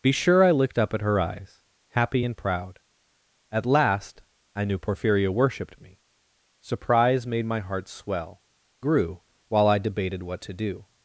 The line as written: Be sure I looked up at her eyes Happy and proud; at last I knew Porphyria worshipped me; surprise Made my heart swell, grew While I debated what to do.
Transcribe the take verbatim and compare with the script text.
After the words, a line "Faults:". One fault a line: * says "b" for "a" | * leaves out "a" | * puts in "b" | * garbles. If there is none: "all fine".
Be sure I looked up at her eyes Happy and proud; at last I knew Porphyria worshipped me; surprise Made my heart swell, grew While I debated what to do.
Faults:
all fine